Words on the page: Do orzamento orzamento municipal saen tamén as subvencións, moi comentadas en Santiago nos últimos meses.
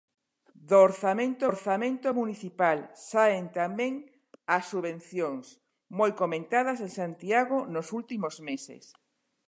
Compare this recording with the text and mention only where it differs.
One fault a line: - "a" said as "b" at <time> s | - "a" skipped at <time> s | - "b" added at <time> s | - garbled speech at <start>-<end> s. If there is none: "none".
none